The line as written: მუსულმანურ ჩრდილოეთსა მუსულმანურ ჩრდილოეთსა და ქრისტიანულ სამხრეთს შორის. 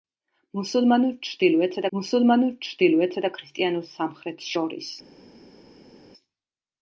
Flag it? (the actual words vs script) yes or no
no